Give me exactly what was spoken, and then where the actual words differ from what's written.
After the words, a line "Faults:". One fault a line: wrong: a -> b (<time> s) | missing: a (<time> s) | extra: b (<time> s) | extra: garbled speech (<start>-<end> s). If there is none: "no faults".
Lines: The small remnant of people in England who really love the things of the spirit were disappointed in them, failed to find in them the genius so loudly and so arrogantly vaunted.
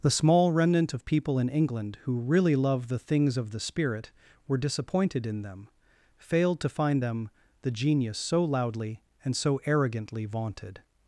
The small remnant of people in England who really love the things of the spirit were disappointed in them, failed to find them the genius so loudly and so arrogantly vaunted.
Faults:
missing: in (7.0 s)